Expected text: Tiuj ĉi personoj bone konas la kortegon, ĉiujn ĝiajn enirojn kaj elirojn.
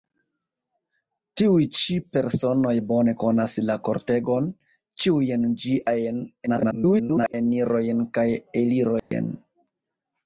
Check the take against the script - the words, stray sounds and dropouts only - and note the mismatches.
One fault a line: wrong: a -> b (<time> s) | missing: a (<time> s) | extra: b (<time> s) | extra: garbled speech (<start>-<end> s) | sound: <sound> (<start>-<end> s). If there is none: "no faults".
extra: garbled speech (6.5-7.3 s)
sound: dropout (9.0-9.1 s)